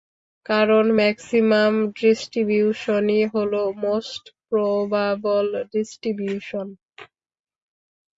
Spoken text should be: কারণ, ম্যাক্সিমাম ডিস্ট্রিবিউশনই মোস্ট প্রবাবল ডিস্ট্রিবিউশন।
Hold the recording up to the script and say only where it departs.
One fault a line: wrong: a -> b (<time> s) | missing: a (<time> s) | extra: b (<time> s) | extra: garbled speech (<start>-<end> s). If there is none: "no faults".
extra: হলো (3.3 s)